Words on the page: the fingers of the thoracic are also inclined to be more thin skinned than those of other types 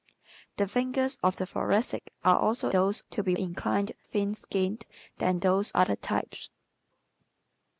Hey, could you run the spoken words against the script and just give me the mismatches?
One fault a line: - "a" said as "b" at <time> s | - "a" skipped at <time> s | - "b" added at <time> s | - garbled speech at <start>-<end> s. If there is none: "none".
- "inclined" said as "those" at 2.7 s
- "more" said as "inclined" at 3.3 s
- "of" skipped at 5.7 s